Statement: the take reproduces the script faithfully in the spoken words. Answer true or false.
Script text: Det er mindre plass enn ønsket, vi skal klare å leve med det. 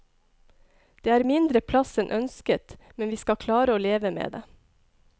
false